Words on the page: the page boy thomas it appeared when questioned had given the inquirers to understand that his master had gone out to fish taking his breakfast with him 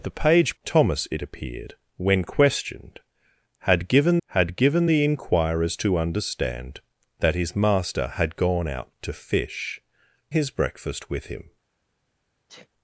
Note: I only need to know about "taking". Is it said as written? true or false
false